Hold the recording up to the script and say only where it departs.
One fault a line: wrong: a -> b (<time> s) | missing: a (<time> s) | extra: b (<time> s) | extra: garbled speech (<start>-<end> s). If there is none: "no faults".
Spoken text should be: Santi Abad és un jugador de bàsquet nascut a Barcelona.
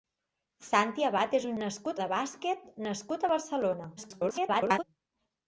wrong: jugador -> nascut (1.6 s)
extra: garbled speech (4.0-4.8 s)